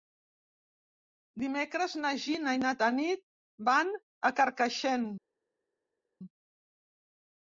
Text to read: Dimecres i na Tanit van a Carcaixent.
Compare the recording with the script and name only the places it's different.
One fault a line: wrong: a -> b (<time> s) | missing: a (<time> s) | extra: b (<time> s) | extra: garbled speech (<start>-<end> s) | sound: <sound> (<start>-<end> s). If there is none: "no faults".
extra: na Gina (2.0 s)